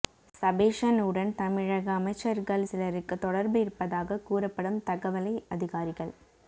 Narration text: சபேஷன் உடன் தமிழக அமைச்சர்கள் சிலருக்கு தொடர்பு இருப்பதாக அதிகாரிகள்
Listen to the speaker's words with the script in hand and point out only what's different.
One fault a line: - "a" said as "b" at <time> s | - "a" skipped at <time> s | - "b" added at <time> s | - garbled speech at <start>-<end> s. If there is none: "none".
- "கூறப்படும் தகவலை" added at 4.2 s